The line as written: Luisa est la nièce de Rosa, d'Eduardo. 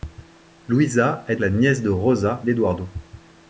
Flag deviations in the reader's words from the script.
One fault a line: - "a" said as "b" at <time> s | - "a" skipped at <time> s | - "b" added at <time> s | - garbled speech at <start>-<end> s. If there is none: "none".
none